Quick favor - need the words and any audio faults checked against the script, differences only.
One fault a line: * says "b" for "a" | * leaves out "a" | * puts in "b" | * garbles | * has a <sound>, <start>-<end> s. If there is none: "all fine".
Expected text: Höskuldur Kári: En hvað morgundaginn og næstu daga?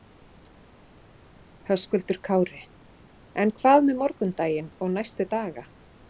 * puts in "með"